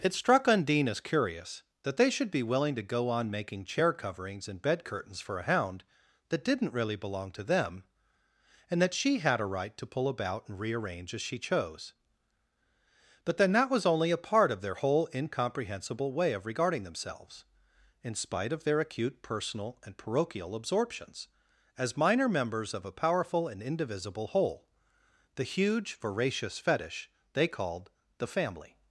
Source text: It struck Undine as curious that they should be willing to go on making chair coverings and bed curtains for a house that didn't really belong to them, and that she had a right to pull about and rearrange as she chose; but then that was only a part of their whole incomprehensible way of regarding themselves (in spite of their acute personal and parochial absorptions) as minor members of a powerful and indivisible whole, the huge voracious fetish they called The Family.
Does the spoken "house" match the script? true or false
false